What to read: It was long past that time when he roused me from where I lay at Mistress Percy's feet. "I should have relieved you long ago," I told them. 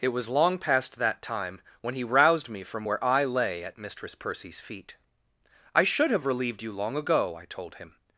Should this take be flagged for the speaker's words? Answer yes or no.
yes